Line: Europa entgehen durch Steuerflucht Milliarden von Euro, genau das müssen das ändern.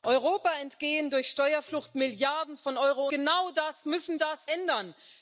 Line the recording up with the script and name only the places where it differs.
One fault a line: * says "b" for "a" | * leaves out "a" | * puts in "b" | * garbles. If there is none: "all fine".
all fine